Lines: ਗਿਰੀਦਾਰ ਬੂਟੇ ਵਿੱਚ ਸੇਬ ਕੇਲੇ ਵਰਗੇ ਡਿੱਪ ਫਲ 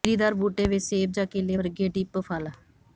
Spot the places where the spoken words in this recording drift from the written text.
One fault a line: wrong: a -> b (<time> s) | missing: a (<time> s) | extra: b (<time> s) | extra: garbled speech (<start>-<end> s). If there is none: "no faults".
extra: ਜਾਂ (1.1 s)